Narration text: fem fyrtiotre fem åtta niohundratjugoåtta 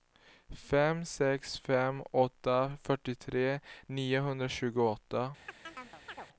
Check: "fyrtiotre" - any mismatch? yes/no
yes